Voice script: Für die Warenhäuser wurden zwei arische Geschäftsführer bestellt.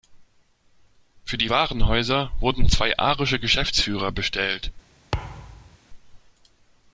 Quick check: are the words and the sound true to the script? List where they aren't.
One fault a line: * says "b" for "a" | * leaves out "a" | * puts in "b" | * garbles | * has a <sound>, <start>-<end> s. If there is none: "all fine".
* has a thud, 5.1-5.8 s